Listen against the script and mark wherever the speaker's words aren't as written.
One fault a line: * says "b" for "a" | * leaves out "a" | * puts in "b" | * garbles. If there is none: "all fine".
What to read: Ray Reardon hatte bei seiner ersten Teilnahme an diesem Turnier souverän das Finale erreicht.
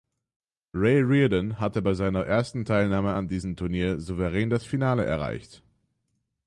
all fine